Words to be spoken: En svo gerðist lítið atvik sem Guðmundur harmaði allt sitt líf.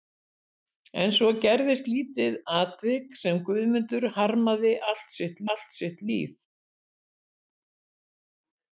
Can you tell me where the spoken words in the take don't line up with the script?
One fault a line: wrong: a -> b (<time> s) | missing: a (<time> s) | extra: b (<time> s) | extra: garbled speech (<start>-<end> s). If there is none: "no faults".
extra: allt sitt (5.5 s)